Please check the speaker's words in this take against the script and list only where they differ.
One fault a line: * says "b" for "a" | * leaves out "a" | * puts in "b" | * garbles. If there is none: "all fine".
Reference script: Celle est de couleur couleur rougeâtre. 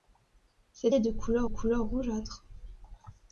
all fine